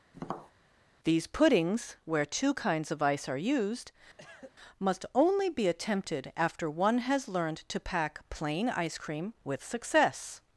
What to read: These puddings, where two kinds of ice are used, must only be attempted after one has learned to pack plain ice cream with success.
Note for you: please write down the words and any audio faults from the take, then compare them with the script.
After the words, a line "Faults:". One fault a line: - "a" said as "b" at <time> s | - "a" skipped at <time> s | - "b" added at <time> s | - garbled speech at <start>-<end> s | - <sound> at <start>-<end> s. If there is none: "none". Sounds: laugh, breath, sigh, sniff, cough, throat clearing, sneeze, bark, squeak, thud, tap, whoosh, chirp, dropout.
These puddings, where two kinds of ice are used, must only be attempted after one has learned to pack plain ice cream with success.
Faults:
- tap at 0.1-0.5 s
- cough at 4.2-4.5 s